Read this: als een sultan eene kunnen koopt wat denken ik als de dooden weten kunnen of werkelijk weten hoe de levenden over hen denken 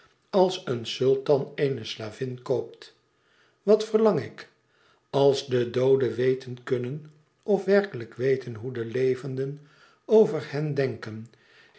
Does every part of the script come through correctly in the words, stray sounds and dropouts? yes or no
no